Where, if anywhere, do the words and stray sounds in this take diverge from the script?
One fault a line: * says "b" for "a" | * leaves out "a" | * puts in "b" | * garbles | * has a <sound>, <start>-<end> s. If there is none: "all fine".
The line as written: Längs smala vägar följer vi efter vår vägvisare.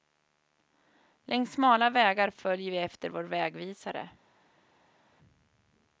all fine